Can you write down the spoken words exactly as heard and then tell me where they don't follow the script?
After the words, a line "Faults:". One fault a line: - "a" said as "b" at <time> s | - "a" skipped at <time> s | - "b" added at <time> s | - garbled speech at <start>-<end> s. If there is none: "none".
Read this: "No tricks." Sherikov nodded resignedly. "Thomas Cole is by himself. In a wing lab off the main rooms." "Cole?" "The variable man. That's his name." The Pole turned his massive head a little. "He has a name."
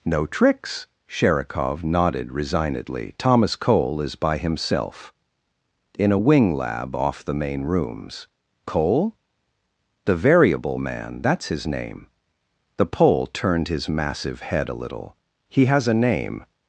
"No tricks." Sherikov nodded resignedly. "Thomas Cole is by himself. In a wing lab off the main rooms." "Cole?" "The variable man. That's his name." The Pole turned his massive head a little. "He has a name."
Faults:
none